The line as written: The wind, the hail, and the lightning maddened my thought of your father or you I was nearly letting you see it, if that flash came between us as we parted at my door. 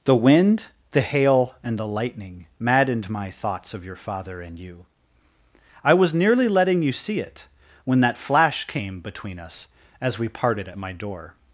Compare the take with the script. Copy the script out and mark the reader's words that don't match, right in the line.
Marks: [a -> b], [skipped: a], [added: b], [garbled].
The wind, the hail, and the lightning maddened my [thought -> thoughts] of your father [or -> and] you I was nearly letting you see it, [if -> when] that flash came between us as we parted at my door.